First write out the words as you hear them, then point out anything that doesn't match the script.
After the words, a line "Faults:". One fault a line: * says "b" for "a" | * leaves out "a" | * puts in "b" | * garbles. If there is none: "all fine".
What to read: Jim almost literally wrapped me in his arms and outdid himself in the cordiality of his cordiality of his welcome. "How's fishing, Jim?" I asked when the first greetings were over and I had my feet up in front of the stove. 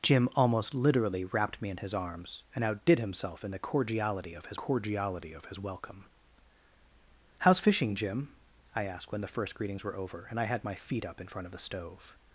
Jim almost literally wrapped me in his arms and outdid himself in the cordiality of his cordiality of his welcome. "How's fishing, Jim?" I asked when the first greetings were over and I had my feet up in front of the stove.
Faults:
all fine